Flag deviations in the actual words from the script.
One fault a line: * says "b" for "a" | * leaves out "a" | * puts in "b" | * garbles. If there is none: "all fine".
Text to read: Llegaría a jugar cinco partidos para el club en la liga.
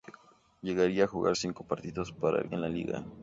* leaves out "club"